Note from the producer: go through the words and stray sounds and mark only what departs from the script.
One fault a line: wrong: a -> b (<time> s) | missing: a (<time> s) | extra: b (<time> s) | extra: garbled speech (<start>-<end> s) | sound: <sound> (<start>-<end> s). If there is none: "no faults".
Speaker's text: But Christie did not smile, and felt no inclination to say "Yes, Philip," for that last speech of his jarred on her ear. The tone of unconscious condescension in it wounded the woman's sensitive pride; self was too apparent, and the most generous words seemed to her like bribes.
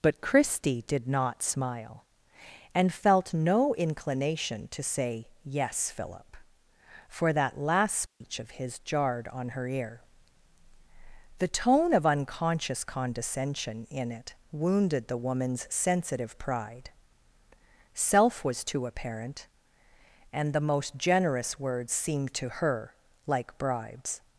sound: dropout (8.1-8.2 s)